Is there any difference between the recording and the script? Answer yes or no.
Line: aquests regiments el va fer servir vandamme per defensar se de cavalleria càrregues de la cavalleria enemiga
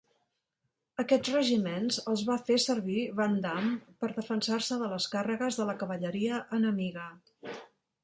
yes